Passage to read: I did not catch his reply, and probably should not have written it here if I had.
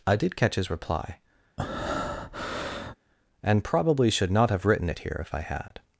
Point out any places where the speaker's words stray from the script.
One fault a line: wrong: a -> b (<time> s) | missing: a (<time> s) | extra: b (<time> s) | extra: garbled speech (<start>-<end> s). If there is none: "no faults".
missing: not (0.3 s)